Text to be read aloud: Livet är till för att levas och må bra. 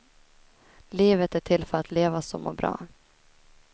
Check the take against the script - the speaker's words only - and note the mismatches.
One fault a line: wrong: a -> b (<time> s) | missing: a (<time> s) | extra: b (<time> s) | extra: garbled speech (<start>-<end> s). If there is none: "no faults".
no faults